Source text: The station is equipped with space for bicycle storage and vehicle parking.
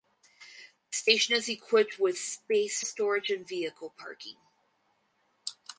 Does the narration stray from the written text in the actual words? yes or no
yes